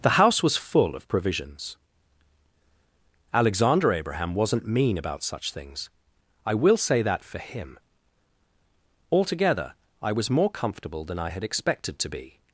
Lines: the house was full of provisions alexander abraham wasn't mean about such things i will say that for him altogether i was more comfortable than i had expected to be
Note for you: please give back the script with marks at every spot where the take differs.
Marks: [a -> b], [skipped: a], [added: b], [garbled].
the house was full of provisions alexander abraham wasn't mean about such things i will say that for him altogether i was more comfortable than i had expected to be